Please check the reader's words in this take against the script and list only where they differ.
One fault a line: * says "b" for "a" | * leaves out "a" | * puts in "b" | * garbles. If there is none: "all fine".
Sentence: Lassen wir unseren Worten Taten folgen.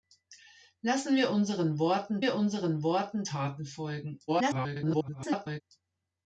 * puts in "wir unseren Worten"
* garbles